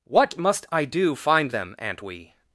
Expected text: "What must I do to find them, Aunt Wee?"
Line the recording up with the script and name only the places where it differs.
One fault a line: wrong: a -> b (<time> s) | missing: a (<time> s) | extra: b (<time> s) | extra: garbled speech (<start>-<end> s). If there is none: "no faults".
missing: to (1.1 s)